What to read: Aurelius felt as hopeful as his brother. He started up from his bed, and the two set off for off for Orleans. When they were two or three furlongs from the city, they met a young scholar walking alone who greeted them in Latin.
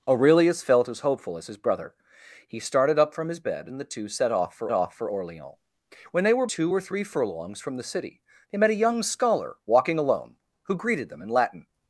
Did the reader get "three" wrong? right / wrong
right